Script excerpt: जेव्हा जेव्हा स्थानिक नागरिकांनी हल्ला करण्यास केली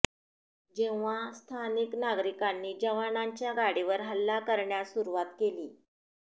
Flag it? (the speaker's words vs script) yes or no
yes